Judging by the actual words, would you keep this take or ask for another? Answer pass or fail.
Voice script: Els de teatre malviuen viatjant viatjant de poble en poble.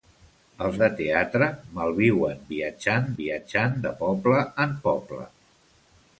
pass